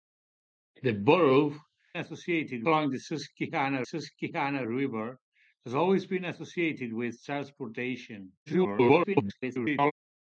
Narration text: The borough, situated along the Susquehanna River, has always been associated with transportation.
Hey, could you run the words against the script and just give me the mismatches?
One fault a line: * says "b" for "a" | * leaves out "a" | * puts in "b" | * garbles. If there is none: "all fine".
* says "associated" for "situated"
* puts in "Susquehanna"
* garbles